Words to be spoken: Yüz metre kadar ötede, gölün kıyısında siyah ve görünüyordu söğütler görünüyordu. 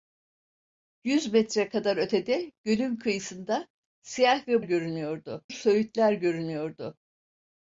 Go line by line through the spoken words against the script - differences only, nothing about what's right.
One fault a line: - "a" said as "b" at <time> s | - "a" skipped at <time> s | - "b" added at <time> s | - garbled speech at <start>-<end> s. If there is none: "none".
none